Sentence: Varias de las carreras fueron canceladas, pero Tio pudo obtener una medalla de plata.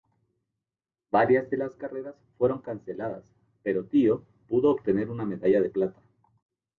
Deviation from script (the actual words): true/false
false